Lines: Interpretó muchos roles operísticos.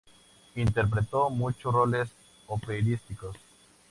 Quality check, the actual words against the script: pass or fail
pass